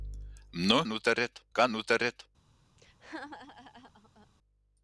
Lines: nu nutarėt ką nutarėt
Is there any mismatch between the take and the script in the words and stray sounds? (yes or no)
yes